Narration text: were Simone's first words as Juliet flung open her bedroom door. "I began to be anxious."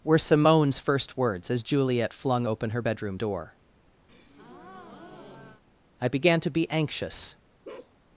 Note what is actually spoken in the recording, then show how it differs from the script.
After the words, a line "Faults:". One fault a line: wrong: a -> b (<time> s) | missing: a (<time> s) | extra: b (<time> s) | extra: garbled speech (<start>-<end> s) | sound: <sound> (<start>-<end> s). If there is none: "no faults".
were Simone's first words as Juliet flung open her bedroom door. "I began to be anxious."
Faults:
sound: breath (4.1-5.6 s)
sound: bark (7.6-7.9 s)